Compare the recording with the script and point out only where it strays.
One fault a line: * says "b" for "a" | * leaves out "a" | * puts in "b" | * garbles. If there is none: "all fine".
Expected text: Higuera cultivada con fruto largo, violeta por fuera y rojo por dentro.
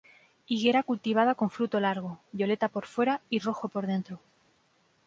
all fine